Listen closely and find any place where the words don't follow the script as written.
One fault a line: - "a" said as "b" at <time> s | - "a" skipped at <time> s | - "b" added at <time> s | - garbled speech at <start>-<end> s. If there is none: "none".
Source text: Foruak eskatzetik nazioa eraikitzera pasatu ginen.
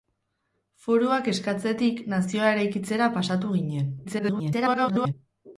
- garbled speech at 4.0-5.1 s